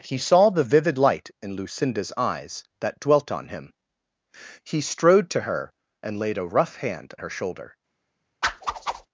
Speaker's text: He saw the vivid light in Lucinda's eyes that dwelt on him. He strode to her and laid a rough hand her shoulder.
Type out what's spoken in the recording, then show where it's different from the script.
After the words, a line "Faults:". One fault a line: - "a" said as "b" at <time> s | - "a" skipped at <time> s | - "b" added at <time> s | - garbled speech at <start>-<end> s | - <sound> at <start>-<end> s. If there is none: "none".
He saw the vivid light in Lucinda's eyes that dwelt on him. He strode to her and laid a rough hand her shoulder.
Faults:
- whoosh at 8.4-9.1 s